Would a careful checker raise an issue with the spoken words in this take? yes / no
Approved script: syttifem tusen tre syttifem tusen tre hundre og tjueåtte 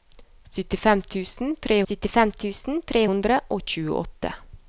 no